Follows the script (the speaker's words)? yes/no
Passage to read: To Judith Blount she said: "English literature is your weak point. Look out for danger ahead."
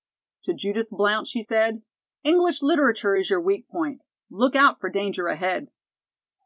yes